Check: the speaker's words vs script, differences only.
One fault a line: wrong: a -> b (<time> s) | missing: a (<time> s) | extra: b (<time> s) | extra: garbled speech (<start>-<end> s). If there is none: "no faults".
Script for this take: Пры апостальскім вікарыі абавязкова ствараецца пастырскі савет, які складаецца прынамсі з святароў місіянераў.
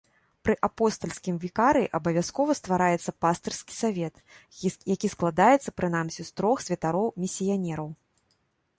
extra: трох (6.4 s)